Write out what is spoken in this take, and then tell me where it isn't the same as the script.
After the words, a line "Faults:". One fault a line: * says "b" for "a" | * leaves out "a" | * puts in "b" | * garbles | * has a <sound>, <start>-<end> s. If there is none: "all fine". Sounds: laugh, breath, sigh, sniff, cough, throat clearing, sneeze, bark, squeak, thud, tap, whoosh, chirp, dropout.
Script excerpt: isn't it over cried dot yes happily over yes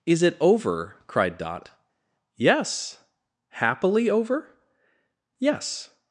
is it over cried dot yes happily over yes
Faults:
* says "is" for "isn't"